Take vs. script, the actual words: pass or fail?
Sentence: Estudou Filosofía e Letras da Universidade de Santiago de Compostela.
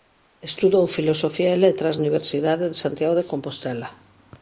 fail